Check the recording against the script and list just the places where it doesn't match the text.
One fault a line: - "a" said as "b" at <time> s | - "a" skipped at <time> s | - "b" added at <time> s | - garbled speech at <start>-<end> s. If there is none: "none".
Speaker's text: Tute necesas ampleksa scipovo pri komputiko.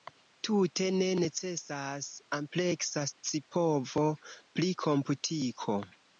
- "ne" added at 0.9 s